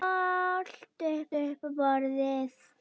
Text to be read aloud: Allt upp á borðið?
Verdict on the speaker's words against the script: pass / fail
fail